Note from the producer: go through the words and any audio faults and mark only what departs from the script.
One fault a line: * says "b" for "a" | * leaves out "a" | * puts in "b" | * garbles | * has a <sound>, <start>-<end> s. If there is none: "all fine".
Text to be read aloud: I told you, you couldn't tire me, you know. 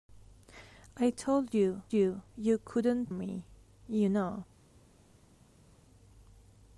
* puts in "you"
* leaves out "tire"